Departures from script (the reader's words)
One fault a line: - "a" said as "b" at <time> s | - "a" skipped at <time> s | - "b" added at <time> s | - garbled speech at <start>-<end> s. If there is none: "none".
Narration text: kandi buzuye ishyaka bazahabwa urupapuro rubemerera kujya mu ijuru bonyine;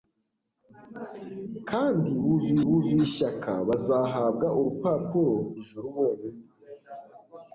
- "buzuye" added at 2.7 s
- "rubemerera kujya mu" skipped at 5.3 s